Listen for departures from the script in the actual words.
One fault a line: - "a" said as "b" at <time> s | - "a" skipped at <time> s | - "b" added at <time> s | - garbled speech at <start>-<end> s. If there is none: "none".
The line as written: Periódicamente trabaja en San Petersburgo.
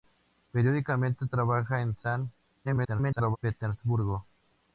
- garbled speech at 2.6-3.4 s